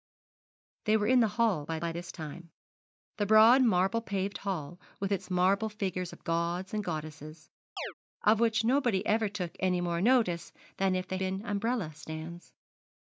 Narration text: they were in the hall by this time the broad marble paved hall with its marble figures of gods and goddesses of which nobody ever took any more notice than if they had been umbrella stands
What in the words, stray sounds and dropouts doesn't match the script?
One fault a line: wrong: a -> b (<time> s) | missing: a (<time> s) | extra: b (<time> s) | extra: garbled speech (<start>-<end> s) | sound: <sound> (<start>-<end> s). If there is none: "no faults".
extra: by (1.8 s)
sound: chirp (7.8-7.9 s)
missing: had (11.2 s)